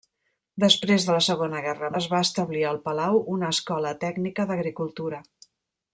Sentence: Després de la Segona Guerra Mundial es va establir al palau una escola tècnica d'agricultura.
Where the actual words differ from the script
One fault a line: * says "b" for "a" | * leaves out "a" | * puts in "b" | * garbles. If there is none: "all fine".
* leaves out "Mundial"